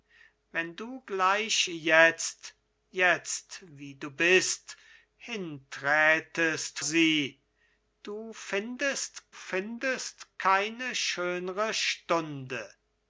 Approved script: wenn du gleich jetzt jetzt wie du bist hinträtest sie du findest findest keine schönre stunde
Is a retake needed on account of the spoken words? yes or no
no